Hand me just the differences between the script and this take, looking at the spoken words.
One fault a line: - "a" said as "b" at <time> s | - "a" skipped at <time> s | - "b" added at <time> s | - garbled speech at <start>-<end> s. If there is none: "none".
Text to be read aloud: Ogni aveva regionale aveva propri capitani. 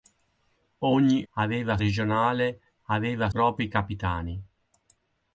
none